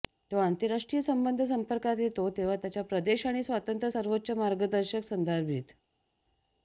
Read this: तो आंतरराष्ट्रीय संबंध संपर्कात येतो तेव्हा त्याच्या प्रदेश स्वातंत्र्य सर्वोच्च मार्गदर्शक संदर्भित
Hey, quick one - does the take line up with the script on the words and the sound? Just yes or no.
no